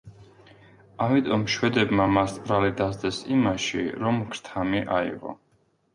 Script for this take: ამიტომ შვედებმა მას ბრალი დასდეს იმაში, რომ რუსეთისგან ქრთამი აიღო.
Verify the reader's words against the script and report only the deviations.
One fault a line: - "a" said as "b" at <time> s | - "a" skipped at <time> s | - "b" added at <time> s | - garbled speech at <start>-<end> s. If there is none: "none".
- "რუსეთისგან" skipped at 4.2 s